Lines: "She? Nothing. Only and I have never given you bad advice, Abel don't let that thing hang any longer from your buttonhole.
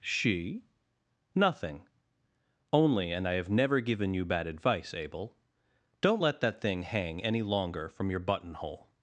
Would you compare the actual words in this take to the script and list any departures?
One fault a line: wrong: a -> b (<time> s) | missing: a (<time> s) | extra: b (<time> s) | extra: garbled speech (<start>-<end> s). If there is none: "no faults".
no faults